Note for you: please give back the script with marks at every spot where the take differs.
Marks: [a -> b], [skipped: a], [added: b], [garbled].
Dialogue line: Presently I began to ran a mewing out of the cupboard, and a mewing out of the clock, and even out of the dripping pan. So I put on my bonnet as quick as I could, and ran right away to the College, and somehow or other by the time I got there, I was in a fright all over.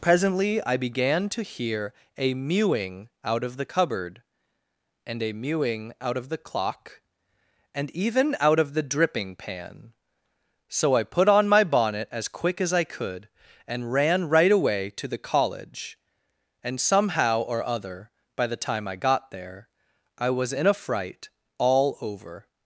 Presently I began to [ran -> hear] a mewing out of the cupboard, and a mewing out of the clock, and even out of the dripping pan. So I put on my bonnet as quick as I could, and ran right away to the College, and somehow or other by the time I got there, I was in a fright all over.